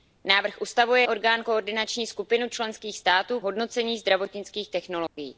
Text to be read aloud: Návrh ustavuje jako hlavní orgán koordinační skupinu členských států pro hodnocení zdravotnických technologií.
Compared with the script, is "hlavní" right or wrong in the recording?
wrong